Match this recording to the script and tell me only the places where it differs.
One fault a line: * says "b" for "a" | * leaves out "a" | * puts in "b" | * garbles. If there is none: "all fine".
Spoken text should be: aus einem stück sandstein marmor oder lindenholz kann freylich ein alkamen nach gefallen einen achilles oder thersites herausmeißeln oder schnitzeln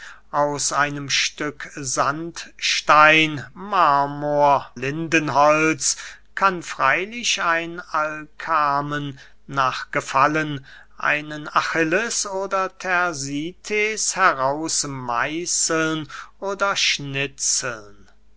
* leaves out "oder"